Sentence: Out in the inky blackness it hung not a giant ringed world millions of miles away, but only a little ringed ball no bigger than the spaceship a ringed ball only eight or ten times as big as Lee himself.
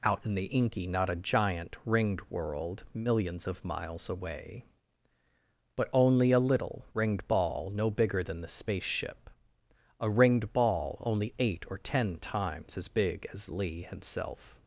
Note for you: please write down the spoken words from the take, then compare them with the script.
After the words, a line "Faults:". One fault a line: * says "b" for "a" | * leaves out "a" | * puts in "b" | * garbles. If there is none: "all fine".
Out in the inky not a giant ringed world millions of miles away, but only a little ringed ball no bigger than the spaceship a ringed ball only eight or ten times as big as Lee himself.
Faults:
* leaves out "blackness it hung"